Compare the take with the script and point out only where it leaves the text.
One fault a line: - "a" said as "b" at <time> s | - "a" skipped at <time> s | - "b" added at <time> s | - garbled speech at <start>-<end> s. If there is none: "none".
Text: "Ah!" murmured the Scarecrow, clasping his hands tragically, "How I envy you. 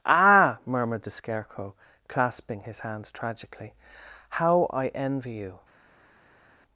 none